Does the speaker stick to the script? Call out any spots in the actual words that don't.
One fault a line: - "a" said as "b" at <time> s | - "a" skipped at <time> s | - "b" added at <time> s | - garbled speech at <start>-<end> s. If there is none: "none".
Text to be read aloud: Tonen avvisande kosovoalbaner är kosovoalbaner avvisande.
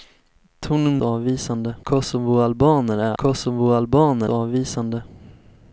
none